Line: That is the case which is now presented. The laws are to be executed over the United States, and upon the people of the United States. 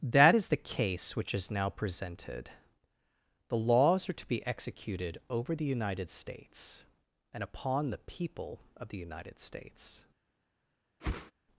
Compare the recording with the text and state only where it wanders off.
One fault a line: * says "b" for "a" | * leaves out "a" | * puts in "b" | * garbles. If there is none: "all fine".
all fine